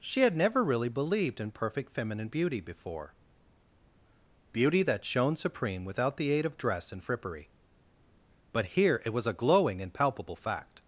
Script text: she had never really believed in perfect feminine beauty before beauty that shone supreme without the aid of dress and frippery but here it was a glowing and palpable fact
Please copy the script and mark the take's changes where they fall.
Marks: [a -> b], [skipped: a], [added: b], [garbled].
she had never really believed in perfect feminine beauty before beauty that shone supreme without the aid of dress and frippery but here it was a glowing and palpable fact